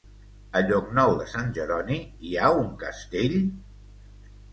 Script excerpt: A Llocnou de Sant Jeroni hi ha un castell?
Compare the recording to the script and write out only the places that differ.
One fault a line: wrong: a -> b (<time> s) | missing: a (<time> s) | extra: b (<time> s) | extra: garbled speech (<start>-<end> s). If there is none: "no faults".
no faults